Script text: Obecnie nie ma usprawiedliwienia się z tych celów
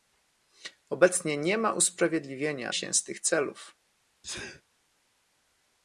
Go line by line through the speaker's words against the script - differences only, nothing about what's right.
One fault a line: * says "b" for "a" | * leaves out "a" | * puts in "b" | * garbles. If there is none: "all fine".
all fine